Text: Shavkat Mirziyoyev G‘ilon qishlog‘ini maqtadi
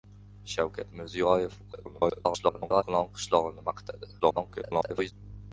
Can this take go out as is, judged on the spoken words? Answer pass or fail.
fail